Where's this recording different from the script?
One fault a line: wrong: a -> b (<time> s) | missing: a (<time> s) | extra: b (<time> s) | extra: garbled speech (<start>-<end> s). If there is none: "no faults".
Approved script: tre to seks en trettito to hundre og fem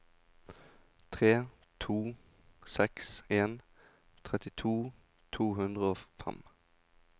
no faults